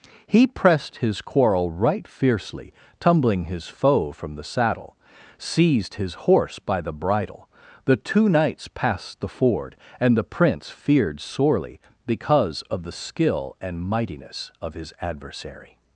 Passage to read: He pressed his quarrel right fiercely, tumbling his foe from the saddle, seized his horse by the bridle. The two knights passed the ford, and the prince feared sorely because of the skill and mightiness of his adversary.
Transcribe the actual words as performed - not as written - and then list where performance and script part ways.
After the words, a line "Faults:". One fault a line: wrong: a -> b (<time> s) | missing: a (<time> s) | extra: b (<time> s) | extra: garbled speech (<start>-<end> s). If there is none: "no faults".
He pressed his quarrel right fiercely, tumbling his foe from the saddle, seized his horse by the bridle. The two knights passed the ford, and the prince feared sorely because of the skill and mightiness of his adversary.
Faults:
no faults